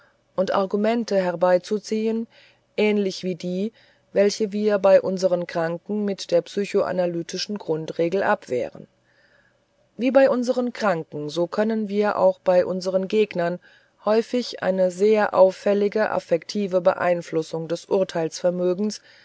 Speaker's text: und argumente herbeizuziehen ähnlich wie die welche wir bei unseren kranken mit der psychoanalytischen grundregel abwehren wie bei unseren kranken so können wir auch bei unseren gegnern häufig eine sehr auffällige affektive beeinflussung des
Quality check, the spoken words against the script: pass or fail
pass